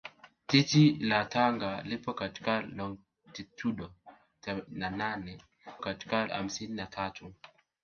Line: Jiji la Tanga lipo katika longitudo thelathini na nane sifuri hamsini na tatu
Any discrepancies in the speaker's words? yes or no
yes